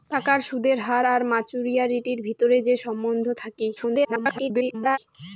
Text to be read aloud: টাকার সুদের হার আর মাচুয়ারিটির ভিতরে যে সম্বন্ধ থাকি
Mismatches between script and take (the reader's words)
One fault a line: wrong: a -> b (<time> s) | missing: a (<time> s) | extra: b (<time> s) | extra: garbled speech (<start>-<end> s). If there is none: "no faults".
extra: garbled speech (3.8-5.0 s)